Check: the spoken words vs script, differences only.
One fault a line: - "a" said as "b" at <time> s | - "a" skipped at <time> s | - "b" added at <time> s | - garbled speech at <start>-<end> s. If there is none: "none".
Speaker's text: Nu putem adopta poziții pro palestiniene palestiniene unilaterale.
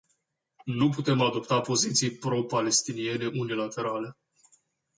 - "palestiniene" skipped at 3.3 s